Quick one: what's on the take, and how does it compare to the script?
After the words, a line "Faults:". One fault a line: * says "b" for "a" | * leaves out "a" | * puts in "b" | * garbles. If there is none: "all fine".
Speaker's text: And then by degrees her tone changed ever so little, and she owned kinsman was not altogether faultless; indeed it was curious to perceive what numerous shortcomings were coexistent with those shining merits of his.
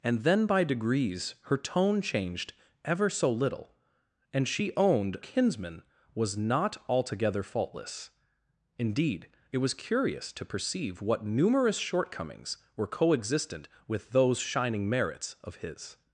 And then by degrees her tone changed ever so little, and she owned kinsman was not altogether faultless; indeed it was curious to perceive what numerous shortcomings were coexistent with those shining merits of his.
Faults:
all fine